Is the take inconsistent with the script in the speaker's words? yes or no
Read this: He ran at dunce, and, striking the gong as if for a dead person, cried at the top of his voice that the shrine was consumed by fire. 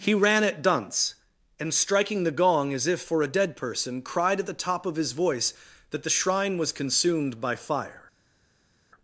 no